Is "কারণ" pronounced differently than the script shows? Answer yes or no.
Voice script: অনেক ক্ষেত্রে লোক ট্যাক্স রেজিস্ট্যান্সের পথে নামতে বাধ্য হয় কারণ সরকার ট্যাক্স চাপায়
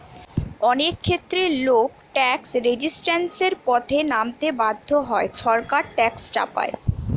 yes